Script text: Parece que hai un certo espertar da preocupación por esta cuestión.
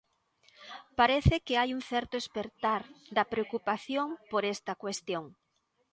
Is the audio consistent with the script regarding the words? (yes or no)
yes